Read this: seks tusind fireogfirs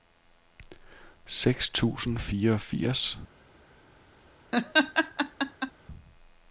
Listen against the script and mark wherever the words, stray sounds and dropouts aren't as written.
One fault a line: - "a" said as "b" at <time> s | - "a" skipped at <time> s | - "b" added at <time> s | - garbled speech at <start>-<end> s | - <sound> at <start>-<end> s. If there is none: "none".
- laugh at 4.5-5.7 s